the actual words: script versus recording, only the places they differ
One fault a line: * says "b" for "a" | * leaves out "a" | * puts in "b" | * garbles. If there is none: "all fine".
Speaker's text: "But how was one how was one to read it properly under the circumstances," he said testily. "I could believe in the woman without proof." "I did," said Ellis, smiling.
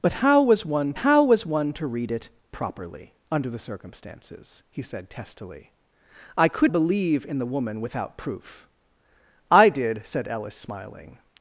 all fine